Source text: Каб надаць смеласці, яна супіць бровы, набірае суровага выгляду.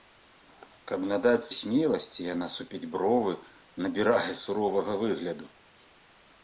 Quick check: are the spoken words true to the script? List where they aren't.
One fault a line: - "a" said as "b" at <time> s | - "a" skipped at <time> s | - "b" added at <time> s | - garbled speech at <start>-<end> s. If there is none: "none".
none